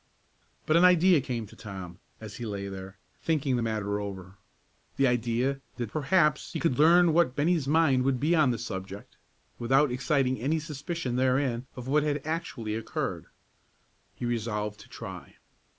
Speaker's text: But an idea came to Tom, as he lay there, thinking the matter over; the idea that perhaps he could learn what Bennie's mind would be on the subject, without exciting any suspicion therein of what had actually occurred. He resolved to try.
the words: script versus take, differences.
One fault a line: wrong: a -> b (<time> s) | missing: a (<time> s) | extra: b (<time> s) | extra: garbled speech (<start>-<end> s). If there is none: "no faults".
no faults